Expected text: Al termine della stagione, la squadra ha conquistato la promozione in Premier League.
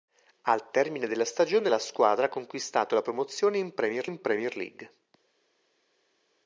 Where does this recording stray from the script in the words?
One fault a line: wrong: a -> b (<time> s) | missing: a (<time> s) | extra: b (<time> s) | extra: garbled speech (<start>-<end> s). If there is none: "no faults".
extra: in Premier (4.0 s)